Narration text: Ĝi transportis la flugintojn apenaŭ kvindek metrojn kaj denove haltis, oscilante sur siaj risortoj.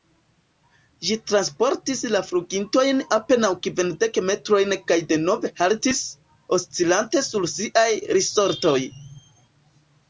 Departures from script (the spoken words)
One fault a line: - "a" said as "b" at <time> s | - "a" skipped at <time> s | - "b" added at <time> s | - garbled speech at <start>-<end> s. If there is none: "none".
none